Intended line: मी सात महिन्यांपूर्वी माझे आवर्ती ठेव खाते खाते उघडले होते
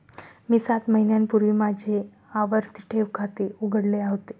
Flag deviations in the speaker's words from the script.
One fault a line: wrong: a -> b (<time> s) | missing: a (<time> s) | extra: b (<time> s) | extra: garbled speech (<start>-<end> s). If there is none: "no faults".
missing: खाते (3.5 s)